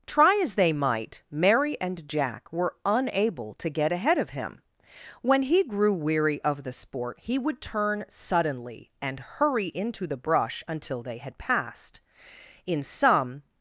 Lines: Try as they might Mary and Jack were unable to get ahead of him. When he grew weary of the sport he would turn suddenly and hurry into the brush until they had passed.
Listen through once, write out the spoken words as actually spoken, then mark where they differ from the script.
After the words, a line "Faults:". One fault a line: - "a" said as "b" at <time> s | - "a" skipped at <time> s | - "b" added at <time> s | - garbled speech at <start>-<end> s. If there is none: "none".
Try as they might Mary and Jack were unable to get ahead of him. When he grew weary of the sport he would turn suddenly and hurry into the brush until they had passed. In some
Faults:
- "In some" added at 12.7 s